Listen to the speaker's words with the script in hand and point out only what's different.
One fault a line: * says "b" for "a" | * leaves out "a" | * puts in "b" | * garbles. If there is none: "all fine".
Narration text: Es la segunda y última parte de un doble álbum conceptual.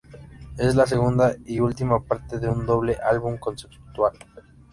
all fine